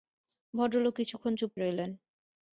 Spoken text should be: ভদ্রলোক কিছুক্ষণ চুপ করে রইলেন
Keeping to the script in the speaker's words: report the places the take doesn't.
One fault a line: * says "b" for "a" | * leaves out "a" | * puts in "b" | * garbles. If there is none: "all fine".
* leaves out "করে"